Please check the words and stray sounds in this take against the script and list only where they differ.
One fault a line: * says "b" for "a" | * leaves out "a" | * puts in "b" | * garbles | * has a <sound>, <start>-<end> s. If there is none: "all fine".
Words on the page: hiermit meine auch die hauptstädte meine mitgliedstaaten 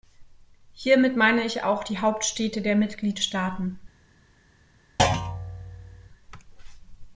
* puts in "ich"
* says "der" for "meine"
* has a thud, 5.0-6.1 s